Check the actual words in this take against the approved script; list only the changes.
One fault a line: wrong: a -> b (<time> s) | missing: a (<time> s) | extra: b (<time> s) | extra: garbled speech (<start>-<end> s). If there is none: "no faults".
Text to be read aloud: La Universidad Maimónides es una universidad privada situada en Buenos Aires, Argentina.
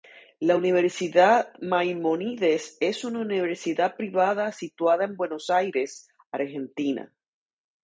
no faults